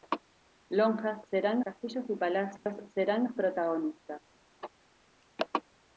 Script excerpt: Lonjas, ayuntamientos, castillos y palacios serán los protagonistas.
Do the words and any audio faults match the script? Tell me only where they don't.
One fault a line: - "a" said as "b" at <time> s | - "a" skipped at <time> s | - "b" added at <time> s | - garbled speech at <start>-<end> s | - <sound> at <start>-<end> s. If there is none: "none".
- "ayuntamientos" said as "serán" at 1.3 s
- dropout at 2.6-2.7 s